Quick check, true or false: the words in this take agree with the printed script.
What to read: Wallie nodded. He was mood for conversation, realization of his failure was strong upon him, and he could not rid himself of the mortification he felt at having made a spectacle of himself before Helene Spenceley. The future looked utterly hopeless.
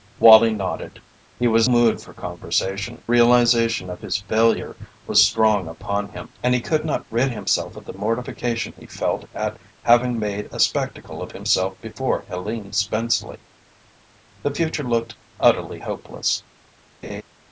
true